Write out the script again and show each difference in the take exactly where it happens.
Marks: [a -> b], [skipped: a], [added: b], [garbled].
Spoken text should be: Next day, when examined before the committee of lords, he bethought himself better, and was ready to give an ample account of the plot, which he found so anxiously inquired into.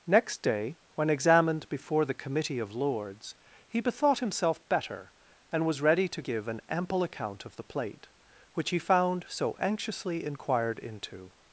Next day, when examined before the committee of lords, he bethought himself better, and was ready to give an ample account of the [plot, -> plate] which he found so anxiously inquired into.